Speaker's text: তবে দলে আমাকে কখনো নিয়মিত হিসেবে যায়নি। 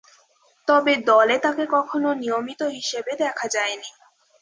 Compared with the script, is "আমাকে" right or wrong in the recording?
wrong